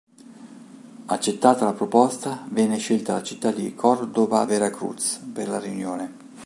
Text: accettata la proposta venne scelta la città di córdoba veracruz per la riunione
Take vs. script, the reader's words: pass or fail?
pass